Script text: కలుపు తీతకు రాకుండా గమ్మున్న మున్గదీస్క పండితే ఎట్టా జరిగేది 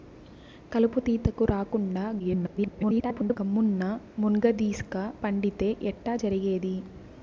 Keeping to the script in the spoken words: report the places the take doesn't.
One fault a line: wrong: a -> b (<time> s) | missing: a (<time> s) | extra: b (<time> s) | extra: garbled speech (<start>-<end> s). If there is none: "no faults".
extra: garbled speech (2.2-3.4 s)